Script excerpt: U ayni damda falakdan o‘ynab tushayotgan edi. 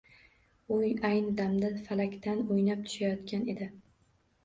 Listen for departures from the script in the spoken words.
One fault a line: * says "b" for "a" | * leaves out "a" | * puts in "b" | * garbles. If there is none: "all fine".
all fine